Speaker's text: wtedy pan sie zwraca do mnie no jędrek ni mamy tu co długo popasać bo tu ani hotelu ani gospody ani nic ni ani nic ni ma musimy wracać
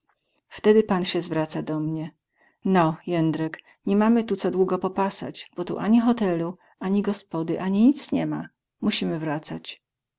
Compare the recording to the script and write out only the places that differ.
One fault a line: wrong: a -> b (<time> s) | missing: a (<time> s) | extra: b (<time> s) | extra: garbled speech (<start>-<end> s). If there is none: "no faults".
missing: ani nic ni (8.2 s)